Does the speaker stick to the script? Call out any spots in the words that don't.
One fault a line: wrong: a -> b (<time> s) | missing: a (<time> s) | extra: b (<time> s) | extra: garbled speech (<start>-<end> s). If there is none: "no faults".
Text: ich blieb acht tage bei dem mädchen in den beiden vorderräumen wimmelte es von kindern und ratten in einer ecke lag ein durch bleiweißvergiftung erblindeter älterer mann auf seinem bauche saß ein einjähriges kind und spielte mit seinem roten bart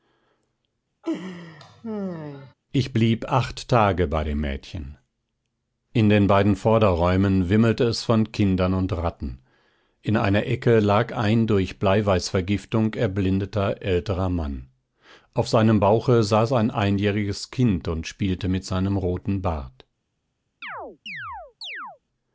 no faults